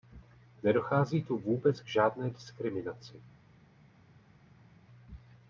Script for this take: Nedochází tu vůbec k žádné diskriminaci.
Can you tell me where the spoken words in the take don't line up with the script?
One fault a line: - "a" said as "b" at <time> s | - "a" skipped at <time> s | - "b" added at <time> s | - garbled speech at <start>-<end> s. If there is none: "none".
none